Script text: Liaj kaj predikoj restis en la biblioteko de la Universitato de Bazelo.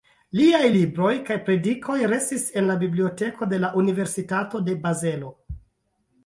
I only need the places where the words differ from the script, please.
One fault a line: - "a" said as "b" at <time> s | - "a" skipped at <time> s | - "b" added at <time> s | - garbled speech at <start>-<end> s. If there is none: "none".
- "libroj" added at 0.7 s